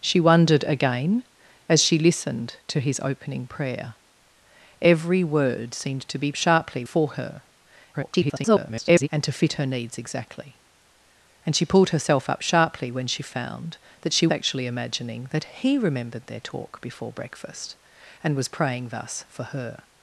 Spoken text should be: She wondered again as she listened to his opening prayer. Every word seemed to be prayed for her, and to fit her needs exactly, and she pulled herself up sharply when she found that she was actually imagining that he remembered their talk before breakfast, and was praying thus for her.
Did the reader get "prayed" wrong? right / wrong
wrong